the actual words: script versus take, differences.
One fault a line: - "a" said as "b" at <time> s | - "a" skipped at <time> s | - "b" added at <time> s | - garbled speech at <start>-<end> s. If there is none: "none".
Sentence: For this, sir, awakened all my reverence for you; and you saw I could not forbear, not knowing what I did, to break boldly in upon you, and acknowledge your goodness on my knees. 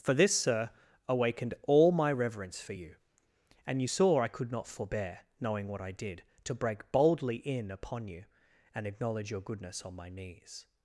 - "not" skipped at 5.2 s